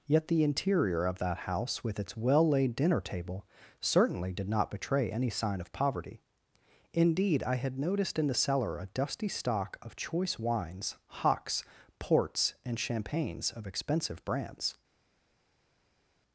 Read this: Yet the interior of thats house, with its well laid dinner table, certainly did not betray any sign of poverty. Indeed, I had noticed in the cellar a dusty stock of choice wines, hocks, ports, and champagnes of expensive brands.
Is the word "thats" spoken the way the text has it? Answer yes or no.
no